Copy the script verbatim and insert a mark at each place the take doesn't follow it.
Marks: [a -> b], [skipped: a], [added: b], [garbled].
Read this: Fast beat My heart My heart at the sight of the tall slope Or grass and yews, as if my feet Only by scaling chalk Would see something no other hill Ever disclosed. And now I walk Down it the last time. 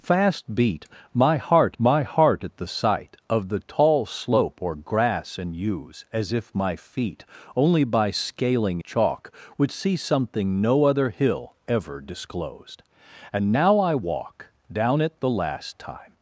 Fast beat My heart My heart at the sight of the tall slope Or grass and yews, as if my feet Only by scaling chalk Would see something no other hill Ever disclosed. And now I walk Down it the last time.